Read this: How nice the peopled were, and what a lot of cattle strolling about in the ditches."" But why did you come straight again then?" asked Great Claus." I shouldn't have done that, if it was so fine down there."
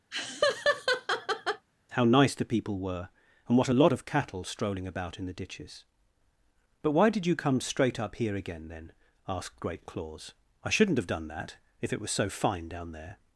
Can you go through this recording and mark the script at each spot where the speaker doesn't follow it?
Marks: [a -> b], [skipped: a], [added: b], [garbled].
How nice the [peopled -> people] were, and what a lot of cattle strolling about in the ditches."" But why did you come straight [added: up here] again then?" asked Great Claus." I shouldn't have done that, if it was so fine down there."